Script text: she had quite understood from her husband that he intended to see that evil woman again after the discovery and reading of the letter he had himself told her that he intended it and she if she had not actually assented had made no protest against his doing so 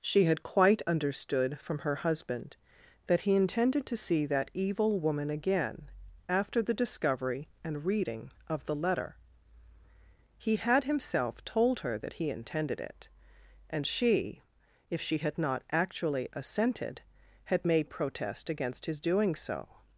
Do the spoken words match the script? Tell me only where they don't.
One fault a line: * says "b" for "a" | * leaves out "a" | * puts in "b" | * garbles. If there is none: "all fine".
* leaves out "no"